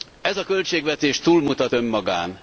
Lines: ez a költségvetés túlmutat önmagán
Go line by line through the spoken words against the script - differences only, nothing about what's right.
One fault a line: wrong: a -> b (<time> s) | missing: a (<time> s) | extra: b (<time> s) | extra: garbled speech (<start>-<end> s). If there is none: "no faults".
no faults